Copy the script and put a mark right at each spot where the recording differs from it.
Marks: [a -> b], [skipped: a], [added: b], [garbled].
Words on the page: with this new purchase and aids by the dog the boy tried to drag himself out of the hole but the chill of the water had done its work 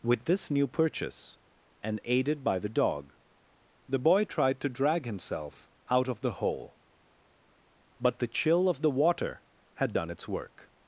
with this new purchase and [aids -> aided] by the dog the boy tried to drag himself out of the hole but the chill of the water had done its work